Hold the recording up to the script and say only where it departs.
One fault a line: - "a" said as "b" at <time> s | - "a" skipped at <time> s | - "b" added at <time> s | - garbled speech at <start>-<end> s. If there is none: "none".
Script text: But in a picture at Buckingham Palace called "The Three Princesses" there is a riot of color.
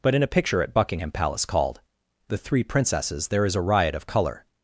none